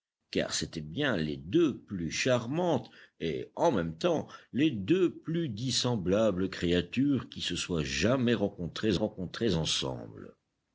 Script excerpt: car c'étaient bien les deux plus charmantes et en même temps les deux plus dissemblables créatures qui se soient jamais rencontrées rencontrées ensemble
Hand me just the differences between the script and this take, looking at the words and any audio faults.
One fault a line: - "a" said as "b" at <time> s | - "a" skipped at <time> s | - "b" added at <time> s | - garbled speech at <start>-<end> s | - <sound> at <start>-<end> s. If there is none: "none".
none